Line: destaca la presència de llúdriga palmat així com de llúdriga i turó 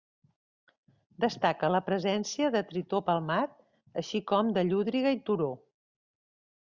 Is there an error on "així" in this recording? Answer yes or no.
no